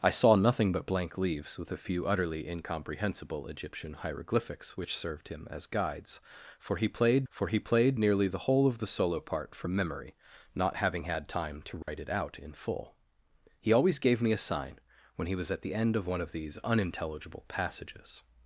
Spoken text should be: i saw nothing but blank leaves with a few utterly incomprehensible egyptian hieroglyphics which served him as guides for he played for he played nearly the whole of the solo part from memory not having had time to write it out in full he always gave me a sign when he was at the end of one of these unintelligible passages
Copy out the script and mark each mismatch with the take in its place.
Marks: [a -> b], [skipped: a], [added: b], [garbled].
i saw nothing but blank leaves with a few utterly incomprehensible egyptian hieroglyphics which served him as guides for he played for he played nearly the whole of the solo part from memory not having had time to write it out in full he always gave me a sign when he was at the end of one of these unintelligible passages